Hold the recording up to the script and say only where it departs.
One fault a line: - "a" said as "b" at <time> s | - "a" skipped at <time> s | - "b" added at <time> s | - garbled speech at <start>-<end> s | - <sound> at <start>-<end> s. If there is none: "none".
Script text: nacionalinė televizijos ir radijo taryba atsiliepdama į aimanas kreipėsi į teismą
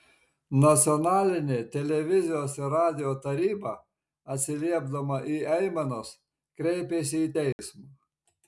- dropout at 7.5-7.6 s